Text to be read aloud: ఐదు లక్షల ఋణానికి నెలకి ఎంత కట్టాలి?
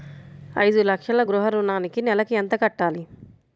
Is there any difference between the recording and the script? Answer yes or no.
yes